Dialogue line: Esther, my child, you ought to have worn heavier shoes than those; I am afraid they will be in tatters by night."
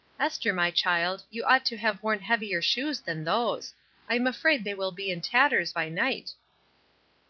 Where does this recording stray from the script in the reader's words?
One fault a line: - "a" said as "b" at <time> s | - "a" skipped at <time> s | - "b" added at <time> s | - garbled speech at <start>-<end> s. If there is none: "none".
none